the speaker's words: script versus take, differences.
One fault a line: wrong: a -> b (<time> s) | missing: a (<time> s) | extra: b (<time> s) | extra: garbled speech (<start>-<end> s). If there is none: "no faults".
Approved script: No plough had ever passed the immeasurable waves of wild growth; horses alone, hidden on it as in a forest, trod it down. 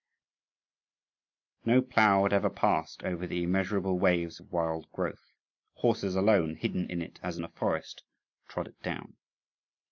extra: over (3.0 s)
wrong: on -> in (6.9 s)